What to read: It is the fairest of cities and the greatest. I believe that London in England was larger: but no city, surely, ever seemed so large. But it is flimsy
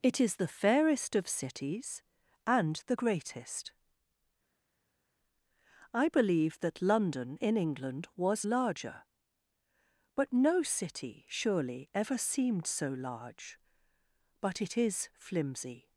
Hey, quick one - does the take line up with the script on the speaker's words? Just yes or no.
yes